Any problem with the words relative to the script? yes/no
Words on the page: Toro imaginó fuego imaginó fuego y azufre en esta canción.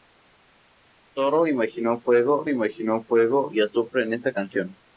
no